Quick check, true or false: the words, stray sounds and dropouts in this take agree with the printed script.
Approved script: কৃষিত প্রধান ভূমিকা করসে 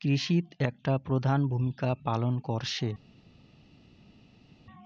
false